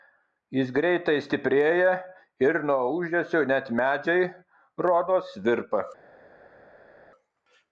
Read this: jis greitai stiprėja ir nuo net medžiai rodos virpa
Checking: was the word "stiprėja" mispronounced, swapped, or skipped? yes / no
no